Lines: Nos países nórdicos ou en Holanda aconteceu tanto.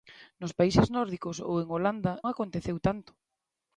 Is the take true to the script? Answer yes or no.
yes